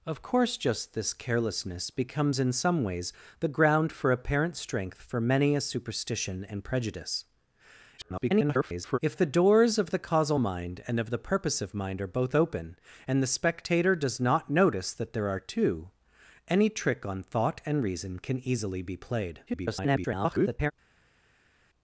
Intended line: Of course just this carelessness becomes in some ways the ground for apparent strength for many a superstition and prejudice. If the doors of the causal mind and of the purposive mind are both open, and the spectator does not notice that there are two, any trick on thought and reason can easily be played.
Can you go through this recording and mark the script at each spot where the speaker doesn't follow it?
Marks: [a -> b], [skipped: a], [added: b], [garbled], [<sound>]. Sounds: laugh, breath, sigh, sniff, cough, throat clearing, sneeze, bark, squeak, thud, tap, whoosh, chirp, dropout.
Of course just this carelessness becomes in some ways the ground for apparent strength for many a superstition and prejudice. [garbled] If the doors of the causal mind and of the purposive mind are both open, and the spectator does not notice that there are two, any trick on thought and reason can easily be played. [garbled]